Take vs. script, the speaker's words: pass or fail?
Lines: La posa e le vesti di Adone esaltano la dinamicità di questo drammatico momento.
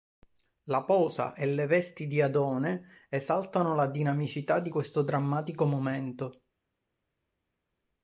pass